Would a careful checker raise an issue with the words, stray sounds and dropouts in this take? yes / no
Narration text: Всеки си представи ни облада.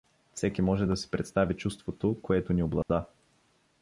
yes